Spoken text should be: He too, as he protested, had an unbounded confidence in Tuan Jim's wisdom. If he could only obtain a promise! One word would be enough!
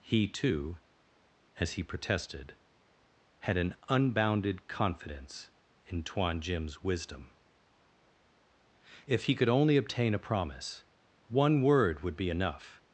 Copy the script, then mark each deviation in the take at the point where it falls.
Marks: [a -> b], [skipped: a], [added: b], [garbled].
He too, as he protested, had an unbounded confidence in Tuan Jim's wisdom. If he could only obtain a promise! One word would be enough!